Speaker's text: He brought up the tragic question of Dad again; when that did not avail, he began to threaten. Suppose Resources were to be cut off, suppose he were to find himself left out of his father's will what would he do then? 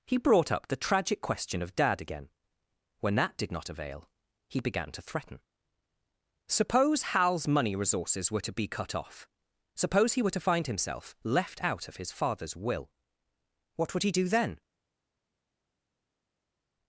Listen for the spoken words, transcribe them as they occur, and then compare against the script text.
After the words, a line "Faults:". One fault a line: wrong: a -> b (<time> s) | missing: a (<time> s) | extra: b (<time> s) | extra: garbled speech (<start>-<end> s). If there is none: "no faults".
He brought up the tragic question of Dad again; when that did not avail, he began to threaten. Suppose Hal's money resources were to be cut off, suppose he were to find himself left out of his father's will what would he do then?
Faults:
extra: Hal's money (7.1 s)